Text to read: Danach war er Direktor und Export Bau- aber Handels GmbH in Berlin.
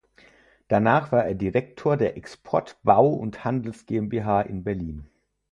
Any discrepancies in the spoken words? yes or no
yes